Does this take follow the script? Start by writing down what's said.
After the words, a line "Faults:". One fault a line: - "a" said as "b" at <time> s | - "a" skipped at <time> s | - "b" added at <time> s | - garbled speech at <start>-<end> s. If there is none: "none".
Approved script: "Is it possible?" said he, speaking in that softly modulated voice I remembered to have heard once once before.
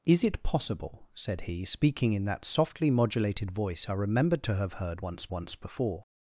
"Is it possible?" said he, speaking in that softly modulated voice I remembered to have heard once once before.
Faults:
none